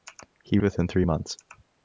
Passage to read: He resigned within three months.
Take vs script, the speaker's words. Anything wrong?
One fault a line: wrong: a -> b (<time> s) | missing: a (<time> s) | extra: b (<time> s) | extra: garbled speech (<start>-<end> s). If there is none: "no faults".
missing: resigned (0.6 s)